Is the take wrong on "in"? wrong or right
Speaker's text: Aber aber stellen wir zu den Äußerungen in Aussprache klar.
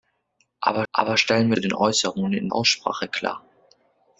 right